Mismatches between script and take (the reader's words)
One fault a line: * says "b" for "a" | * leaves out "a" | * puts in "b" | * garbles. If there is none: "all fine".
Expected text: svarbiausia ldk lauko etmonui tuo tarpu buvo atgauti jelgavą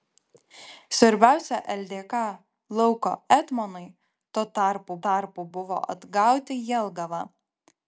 * puts in "tarpu"